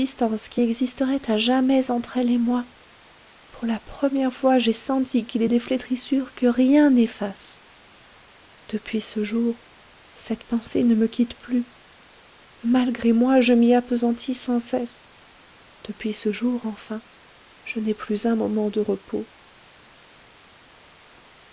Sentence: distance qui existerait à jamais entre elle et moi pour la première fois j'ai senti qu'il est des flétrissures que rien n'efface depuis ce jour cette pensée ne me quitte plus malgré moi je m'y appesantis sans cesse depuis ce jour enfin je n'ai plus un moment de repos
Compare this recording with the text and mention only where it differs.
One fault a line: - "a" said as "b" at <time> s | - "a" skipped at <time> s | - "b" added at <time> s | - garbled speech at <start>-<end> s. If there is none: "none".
none